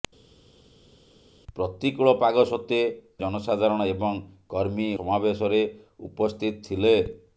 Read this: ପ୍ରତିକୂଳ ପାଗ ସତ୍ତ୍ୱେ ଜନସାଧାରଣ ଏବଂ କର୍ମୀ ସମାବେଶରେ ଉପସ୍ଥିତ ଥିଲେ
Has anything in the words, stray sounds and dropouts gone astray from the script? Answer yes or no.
no